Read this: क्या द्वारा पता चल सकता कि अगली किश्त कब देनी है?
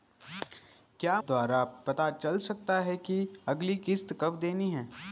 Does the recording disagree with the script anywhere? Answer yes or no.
no